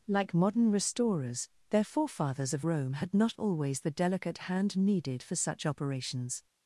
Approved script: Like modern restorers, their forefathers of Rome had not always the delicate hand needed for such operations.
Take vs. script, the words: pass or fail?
pass